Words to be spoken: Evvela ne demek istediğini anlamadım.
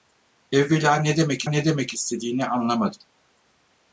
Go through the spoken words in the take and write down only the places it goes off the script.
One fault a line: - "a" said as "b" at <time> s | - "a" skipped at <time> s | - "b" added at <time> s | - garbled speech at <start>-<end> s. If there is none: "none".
- "ne demek" added at 1.4 s